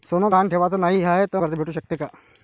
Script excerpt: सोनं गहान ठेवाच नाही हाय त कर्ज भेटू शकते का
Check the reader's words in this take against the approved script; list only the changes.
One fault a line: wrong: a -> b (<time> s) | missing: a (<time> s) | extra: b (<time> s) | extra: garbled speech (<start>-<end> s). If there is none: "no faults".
no faults